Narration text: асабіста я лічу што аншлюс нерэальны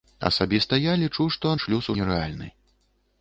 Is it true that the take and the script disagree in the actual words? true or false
false